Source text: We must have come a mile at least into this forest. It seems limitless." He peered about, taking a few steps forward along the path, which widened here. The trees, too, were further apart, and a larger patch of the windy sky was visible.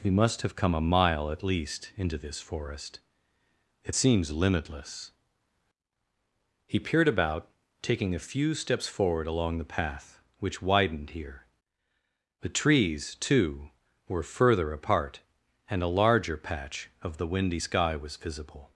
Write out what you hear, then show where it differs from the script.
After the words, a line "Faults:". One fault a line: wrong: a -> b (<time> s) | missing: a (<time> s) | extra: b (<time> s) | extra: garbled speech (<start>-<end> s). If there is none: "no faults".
We must have come a mile at least into this forest. It seems limitless." He peered about, taking a few steps forward along the path, which widened here. The trees, too, were further apart, and a larger patch of the windy sky was visible.
Faults:
no faults